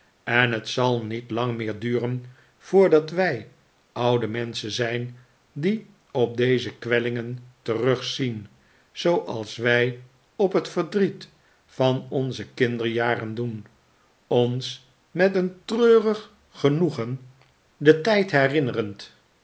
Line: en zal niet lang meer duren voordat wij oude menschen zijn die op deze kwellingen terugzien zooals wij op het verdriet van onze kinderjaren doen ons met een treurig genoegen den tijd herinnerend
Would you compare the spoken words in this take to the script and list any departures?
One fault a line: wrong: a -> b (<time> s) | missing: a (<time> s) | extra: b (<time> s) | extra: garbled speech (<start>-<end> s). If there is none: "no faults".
extra: het (0.5 s)